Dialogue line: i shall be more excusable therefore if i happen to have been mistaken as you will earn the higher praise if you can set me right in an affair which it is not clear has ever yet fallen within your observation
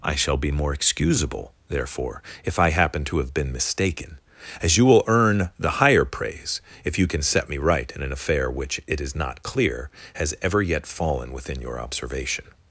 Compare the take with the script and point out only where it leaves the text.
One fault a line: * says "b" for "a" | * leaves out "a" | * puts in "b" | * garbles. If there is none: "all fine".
all fine